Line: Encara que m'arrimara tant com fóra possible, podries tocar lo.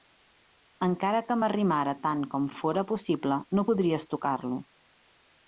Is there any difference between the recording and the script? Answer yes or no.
yes